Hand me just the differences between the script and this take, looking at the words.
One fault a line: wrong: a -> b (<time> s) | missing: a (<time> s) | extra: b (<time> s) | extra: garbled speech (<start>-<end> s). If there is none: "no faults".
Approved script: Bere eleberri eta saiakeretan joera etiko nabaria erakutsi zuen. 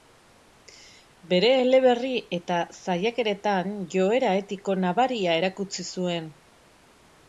no faults